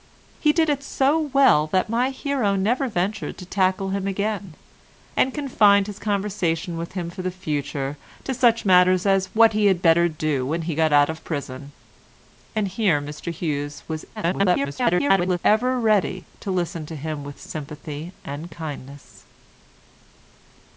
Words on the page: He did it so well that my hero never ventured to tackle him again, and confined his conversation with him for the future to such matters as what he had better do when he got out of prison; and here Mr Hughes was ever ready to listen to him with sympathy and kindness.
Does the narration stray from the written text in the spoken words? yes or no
yes